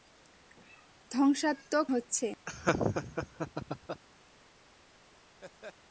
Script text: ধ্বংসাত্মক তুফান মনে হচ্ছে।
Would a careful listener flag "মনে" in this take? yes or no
yes